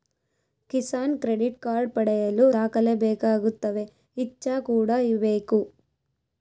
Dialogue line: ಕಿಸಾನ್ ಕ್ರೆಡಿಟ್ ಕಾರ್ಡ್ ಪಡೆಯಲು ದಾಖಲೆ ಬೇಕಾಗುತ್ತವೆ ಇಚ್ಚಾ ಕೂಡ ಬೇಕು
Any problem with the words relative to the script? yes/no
no